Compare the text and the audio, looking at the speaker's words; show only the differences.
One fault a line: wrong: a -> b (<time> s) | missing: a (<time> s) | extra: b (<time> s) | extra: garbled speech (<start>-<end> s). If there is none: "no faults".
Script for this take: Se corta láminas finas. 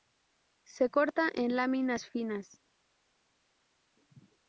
extra: en (1.3 s)